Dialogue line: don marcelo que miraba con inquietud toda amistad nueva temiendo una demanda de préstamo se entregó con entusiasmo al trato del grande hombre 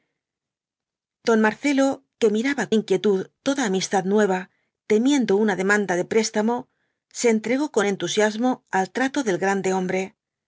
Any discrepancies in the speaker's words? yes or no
yes